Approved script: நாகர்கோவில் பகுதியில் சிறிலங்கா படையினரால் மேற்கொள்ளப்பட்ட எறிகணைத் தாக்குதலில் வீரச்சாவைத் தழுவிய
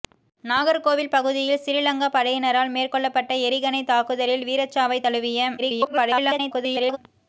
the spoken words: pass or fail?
fail